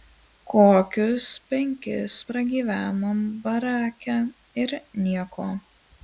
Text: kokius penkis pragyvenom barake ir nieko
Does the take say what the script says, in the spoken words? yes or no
yes